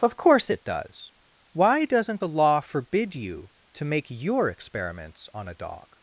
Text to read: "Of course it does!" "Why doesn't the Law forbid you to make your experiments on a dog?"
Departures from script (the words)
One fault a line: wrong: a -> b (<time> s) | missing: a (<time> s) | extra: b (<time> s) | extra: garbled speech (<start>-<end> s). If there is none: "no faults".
no faults